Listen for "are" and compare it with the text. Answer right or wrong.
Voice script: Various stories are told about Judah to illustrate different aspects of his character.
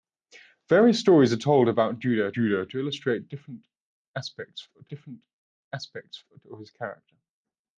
right